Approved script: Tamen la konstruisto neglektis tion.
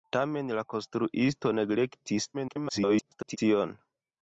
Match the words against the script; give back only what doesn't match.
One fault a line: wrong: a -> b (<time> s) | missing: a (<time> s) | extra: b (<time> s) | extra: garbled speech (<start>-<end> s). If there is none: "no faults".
extra: garbled speech (2.3-3.4 s)